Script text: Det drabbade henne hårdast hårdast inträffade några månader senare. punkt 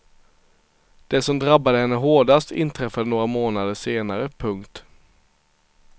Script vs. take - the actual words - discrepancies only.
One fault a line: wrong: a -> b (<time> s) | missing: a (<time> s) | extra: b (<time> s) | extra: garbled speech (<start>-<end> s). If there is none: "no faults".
extra: som (1.2 s)
missing: hårdast (2.5 s)